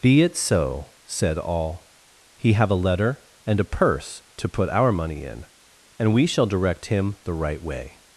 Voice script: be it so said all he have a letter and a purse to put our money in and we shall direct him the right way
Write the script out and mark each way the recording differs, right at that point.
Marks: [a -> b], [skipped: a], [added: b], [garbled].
be it so said all he have a letter and a purse to put our money in and we shall direct him the right way